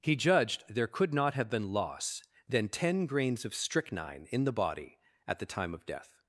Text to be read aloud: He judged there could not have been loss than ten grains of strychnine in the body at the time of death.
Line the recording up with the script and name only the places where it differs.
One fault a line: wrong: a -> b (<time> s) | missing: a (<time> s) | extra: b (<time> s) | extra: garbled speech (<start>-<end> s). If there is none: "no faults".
no faults